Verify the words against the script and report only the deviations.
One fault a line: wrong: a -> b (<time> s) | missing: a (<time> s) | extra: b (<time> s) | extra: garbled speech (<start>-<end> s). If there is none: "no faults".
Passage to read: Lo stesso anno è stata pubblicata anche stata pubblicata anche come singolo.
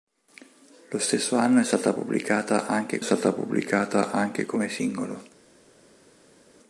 no faults